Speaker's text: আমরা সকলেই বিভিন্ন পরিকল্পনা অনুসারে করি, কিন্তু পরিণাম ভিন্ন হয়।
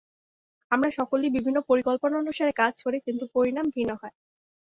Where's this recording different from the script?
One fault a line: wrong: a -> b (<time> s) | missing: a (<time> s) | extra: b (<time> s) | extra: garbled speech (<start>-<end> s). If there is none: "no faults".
extra: কাজ (2.6 s)